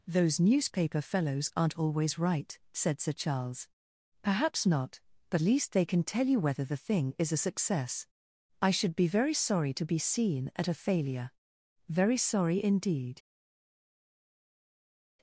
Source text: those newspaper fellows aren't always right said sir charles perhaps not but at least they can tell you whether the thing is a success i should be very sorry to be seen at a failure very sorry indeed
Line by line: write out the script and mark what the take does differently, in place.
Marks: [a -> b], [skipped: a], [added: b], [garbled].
those newspaper fellows aren't always right said sir charles perhaps not but [skipped: at] least they can tell you whether the thing is a success i should be very sorry to be seen at a failure very sorry indeed